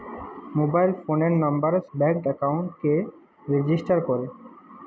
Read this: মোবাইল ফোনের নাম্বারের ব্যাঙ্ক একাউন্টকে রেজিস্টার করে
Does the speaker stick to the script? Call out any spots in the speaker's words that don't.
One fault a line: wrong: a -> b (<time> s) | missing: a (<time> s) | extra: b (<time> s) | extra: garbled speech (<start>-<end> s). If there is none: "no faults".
no faults